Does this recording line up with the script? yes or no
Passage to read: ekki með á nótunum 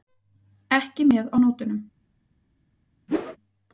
yes